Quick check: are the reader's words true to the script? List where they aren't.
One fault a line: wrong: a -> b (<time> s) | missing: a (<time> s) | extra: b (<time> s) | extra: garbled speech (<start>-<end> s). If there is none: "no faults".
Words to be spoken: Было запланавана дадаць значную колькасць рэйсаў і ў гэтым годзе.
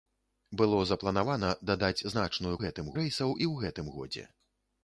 wrong: колькасць -> гэтым (2.7 s)